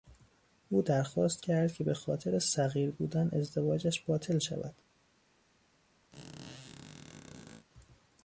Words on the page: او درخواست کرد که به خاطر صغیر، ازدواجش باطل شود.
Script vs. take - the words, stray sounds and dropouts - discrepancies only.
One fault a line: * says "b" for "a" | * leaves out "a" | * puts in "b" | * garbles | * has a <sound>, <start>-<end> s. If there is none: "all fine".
* puts in "بودن"
* has a squeak, 6.1-7.7 s